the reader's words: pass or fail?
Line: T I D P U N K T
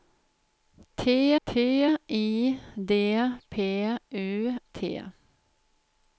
fail